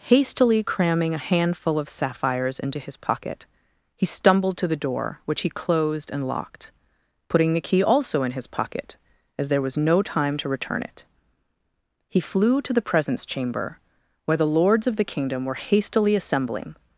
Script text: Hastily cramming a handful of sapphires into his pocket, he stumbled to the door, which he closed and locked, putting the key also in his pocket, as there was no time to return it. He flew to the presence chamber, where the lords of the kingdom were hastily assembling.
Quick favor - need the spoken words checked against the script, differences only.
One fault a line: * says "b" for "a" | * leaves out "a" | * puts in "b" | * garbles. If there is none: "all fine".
all fine